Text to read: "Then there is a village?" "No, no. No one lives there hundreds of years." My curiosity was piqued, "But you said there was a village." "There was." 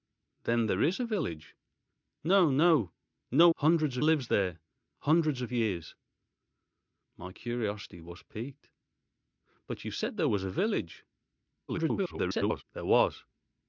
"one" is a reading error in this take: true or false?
true